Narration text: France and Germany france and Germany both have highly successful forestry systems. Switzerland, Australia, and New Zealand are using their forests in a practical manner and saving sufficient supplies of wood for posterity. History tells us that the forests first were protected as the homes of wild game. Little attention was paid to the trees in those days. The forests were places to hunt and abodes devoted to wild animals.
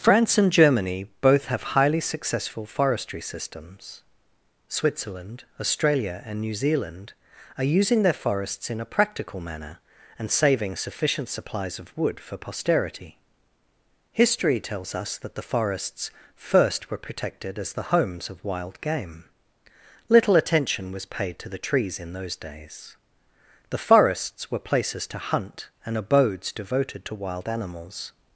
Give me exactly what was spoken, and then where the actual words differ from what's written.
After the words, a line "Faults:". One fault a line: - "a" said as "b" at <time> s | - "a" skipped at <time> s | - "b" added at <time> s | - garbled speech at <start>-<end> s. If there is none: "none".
France and Germany both have highly successful forestry systems. Switzerland, Australia, and New Zealand are using their forests in a practical manner and saving sufficient supplies of wood for posterity. History tells us that the forests first were protected as the homes of wild game. Little attention was paid to the trees in those days. The forests were places to hunt and abodes devoted to wild animals.
Faults:
- "france and Germany" skipped at 1.1 s